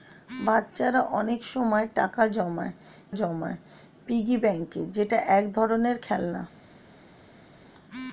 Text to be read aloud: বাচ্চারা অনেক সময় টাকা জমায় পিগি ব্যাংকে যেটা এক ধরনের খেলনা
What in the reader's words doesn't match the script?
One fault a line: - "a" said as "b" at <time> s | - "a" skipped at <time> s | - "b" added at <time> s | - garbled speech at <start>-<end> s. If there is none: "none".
- "জমায়" added at 3.2 s